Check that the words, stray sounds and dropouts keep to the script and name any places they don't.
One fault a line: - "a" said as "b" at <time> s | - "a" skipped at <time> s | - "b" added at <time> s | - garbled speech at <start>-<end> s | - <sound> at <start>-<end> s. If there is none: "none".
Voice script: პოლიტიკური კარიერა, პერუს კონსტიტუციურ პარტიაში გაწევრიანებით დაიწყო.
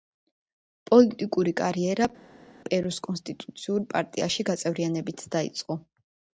none